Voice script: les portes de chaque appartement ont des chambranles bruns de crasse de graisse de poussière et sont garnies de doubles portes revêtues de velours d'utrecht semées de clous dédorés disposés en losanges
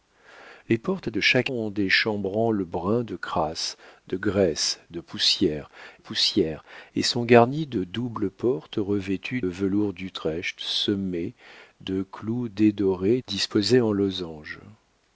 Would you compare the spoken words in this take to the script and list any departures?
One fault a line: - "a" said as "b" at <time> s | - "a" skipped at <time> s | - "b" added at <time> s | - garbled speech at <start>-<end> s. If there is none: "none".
- "appartement" skipped at 1.5 s
- "poussière" added at 6.0 s
- "de" skipped at 9.4 s